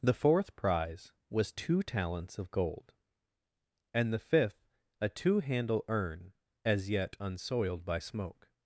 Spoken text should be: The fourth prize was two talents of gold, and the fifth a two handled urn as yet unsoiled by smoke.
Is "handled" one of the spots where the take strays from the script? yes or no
yes